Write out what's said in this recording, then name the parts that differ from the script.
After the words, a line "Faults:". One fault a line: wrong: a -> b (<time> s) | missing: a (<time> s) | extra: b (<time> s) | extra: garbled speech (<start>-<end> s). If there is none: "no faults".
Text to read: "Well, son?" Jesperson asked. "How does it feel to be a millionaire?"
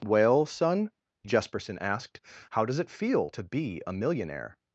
"Well, son?" Jesperson asked. "How does it feel to be a millionaire?"
Faults:
no faults